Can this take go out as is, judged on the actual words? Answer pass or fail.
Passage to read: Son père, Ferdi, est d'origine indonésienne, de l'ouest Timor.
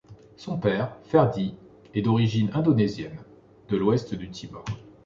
fail